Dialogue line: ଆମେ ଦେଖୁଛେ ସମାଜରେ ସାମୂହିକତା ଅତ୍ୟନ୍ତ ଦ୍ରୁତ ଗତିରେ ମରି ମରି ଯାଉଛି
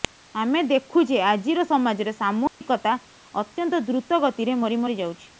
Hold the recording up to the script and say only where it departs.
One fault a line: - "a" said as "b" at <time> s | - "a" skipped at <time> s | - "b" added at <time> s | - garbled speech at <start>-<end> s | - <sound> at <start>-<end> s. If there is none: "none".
- "ଆଜିର" added at 1.2 s
- dropout at 2.5-2.6 s